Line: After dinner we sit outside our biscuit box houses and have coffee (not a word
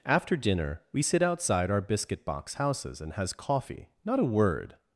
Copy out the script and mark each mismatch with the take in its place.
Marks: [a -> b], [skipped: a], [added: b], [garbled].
After dinner we sit outside our biscuit box houses and [have -> has] coffee (not a word